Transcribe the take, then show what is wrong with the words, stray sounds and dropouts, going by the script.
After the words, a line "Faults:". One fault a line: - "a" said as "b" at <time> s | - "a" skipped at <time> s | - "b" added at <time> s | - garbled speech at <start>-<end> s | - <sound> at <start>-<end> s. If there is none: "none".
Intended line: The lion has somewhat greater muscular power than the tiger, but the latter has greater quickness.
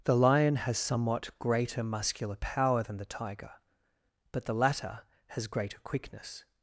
The lion has somewhat greater muscular power than the tiger, but the latter has greater quickness.
Faults:
none